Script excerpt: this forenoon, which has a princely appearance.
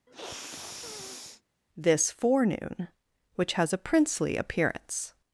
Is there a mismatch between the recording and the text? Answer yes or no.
no